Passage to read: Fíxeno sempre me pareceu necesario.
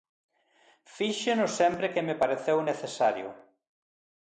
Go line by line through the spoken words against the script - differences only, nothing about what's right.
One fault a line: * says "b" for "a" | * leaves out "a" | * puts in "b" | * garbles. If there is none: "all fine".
* puts in "que"